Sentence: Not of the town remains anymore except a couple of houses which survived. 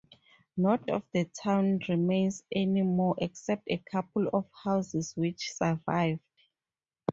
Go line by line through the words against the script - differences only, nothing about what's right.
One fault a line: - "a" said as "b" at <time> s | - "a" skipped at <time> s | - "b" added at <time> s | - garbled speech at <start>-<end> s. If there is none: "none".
none